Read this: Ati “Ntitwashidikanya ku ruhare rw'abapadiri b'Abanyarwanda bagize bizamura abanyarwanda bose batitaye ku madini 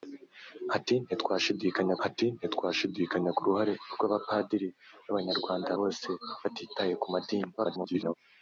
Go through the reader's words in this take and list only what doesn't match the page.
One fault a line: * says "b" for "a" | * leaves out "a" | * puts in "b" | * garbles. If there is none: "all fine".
* puts in "ati Ntitwashidikanya"
* leaves out "bagize bizamura abanyarwanda"
* garbles